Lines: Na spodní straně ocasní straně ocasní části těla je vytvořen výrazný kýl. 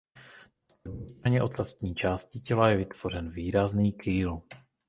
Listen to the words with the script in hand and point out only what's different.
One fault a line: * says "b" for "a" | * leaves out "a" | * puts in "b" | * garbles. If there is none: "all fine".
* leaves out "straně ocasní"